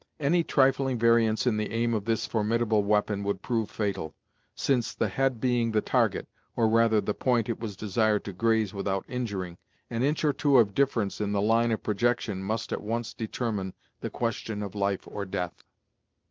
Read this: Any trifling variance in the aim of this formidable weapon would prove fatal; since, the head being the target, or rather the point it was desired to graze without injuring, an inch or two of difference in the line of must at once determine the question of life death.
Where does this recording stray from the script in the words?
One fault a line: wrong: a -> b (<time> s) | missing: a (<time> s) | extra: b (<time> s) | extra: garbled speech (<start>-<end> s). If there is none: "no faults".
extra: projection (11.8 s)
extra: or (15.1 s)